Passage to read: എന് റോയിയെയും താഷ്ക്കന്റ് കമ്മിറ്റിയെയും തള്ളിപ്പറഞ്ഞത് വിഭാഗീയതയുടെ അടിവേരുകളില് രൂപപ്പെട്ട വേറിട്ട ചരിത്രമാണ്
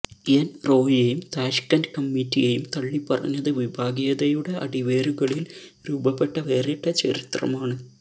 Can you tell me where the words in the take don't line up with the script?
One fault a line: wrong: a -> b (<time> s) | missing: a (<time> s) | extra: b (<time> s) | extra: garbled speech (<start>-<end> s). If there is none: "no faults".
no faults